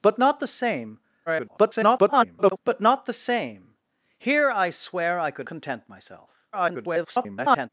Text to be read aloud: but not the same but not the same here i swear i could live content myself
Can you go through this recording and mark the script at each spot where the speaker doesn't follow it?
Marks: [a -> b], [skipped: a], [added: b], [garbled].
but not the same [garbled] but not the same here i swear i could [skipped: live] content myself [garbled]